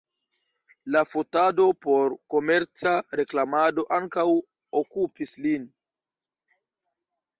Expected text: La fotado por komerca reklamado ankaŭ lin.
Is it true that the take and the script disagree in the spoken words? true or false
true